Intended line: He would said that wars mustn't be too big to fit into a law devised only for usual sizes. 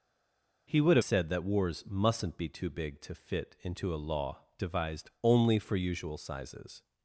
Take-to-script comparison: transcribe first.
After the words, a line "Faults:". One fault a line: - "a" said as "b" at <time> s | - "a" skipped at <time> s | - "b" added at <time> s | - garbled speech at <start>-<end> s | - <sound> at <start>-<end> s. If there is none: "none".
He would said that wars mustn't be too big to fit into a law devised only for usual sizes.
Faults:
none